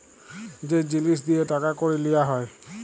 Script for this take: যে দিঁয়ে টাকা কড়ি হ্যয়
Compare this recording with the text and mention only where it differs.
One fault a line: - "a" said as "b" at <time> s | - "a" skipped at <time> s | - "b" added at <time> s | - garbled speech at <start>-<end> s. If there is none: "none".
- "জিলিস" added at 0.8 s
- "লিয়া" added at 2.0 s